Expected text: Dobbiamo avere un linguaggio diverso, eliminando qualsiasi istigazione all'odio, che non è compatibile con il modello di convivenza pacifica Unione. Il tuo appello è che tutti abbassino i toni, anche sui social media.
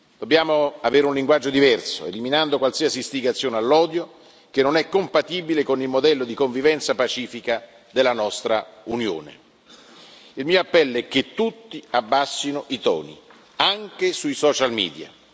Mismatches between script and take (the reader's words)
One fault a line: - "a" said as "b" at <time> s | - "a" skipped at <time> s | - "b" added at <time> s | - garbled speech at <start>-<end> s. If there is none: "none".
- "della nostra" added at 7.9 s
- "tuo" said as "mio" at 10.5 s